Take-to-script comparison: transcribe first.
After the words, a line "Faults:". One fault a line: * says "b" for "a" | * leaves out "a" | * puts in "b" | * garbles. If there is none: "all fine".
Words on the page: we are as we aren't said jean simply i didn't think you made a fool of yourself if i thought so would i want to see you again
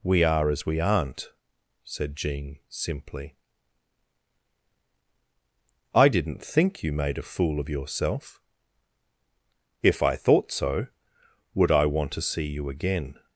we are as we aren't said jean simply i didn't think you made a fool of yourself if i thought so would i want to see you again
Faults:
all fine